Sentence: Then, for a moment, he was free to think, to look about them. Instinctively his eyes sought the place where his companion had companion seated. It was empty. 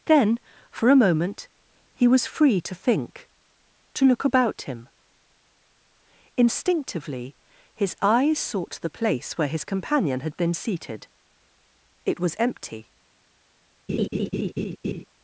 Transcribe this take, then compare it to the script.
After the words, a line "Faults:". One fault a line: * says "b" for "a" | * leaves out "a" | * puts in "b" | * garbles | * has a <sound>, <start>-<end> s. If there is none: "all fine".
Then, for a moment, he was free to think, to look about him. Instinctively his eyes sought the place where his companion had been seated. It was empty.
Faults:
* says "him" for "them"
* says "been" for "companion"
* has a laugh, 13.9-15.0 s